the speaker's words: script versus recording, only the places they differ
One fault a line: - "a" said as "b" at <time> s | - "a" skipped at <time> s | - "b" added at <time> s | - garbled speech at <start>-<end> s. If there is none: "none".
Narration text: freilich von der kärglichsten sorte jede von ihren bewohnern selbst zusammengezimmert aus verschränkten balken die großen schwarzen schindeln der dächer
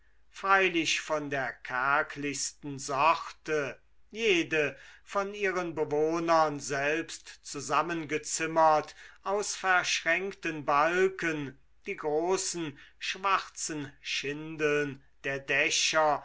none